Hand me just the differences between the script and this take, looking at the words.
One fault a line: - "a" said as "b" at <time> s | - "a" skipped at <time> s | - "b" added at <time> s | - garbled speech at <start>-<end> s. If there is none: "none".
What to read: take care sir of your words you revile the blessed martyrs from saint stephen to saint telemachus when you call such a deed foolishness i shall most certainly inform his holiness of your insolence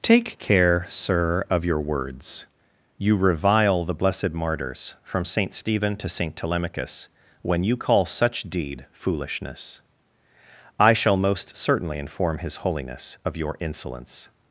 - "a" skipped at 8.4 s